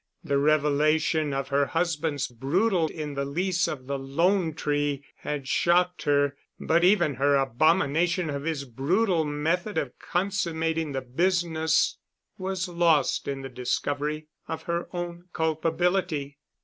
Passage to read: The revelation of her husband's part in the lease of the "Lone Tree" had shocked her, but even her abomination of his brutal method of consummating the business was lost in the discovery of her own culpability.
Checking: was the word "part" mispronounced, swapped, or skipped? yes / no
yes